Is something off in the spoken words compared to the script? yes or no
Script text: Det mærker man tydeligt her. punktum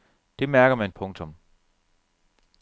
yes